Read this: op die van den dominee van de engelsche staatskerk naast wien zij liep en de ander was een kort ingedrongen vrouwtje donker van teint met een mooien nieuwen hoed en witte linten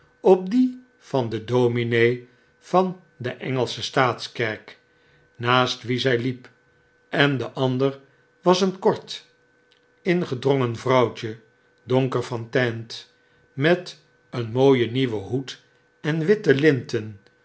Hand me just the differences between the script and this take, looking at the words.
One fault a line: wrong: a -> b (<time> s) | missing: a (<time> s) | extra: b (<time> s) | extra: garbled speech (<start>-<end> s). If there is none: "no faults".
no faults